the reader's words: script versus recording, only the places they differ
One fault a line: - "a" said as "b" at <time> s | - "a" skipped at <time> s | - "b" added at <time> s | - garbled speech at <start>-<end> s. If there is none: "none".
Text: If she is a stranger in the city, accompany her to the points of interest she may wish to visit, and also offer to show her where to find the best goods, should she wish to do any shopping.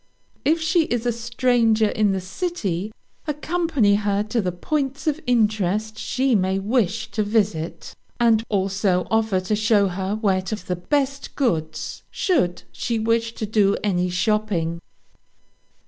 - "find" skipped at 10.6 s